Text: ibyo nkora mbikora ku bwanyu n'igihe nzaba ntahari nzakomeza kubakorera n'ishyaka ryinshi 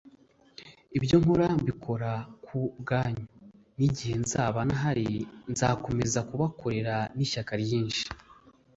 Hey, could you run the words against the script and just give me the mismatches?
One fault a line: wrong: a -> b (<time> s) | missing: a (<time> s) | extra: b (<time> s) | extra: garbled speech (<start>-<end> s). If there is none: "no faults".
no faults